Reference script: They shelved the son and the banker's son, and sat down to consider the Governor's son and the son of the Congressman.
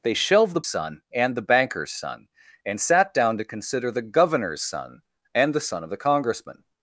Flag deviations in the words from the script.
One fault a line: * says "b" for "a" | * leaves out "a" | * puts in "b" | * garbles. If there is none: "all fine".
all fine